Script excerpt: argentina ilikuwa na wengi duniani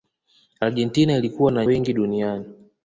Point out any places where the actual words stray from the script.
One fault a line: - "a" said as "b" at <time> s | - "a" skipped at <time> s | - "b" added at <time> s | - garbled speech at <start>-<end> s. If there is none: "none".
none